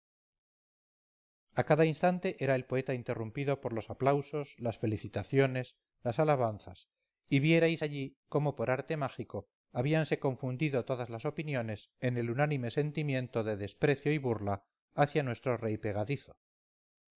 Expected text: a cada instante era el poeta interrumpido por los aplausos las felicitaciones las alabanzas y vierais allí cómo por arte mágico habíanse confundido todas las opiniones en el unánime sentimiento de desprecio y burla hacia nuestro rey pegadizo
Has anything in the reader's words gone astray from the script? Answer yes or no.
no